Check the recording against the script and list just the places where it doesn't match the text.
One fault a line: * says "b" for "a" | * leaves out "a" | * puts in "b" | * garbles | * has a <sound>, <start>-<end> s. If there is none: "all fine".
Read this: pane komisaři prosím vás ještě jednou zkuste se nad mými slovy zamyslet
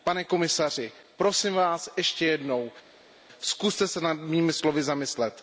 all fine